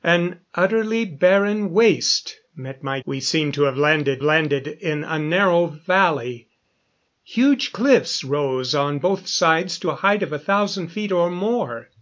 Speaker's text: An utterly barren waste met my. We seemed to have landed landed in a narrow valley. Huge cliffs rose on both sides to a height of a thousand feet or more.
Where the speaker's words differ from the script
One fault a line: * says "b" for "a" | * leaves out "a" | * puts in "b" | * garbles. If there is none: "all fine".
all fine